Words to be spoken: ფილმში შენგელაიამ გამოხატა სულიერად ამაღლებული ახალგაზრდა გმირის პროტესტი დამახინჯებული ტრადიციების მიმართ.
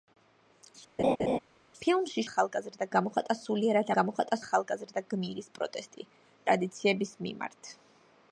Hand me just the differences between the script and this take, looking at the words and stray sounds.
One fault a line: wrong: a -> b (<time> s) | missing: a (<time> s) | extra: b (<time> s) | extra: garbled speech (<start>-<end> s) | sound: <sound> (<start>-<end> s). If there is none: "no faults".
sound: laugh (1.0-1.4 s)
wrong: შენგელაიამ -> ახალგაზრდა (2.3 s)
wrong: ამაღლებული -> გამოხატა (4.0 s)
missing: დამახინჯებული (6.1 s)